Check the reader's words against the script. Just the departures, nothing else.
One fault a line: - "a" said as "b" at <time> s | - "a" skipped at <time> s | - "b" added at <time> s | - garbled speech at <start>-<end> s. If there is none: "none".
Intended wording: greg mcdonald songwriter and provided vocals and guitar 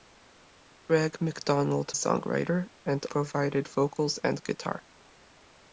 none